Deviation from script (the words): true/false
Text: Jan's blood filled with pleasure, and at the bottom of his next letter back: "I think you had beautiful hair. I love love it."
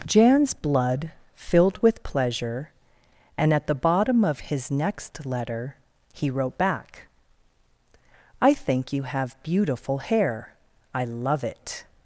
true